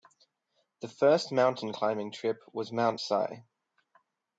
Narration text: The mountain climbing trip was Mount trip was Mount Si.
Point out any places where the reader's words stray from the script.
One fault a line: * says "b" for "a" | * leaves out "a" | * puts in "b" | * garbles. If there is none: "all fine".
* puts in "first"
* leaves out "trip was Mount"